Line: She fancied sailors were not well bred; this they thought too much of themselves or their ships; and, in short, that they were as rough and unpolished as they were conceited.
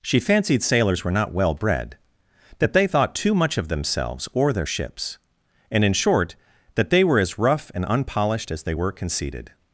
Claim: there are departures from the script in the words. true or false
true